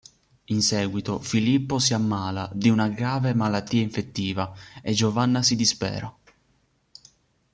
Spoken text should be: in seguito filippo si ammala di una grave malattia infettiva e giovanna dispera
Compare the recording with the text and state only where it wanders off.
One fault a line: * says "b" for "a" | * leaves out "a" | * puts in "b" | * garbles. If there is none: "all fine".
* puts in "si"